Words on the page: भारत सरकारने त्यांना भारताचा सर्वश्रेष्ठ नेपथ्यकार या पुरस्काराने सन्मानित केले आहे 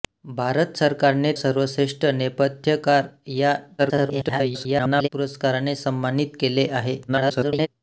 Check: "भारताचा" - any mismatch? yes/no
yes